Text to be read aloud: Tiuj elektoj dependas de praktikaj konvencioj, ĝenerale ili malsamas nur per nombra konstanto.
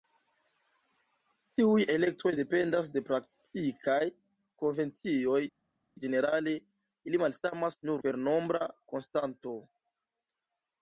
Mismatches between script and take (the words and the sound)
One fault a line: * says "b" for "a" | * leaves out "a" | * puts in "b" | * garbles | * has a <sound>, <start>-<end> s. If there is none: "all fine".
all fine